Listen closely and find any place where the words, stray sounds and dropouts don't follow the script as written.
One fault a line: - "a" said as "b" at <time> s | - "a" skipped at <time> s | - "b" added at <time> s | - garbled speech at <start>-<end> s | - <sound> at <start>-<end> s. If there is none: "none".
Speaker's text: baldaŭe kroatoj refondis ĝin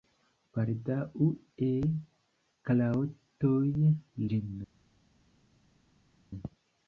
- "refondis" skipped at 3.6 s